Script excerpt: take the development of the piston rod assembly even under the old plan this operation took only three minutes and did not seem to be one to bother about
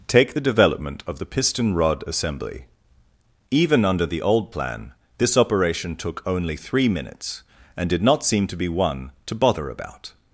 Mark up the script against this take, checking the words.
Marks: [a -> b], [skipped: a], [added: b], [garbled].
take the development of the piston rod assembly even under the old plan this operation took only three minutes and did not seem to be one to bother about